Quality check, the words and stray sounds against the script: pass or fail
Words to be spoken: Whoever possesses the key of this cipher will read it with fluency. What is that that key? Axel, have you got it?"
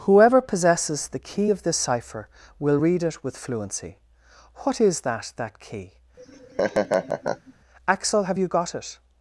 fail